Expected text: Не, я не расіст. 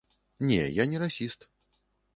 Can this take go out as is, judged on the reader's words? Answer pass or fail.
pass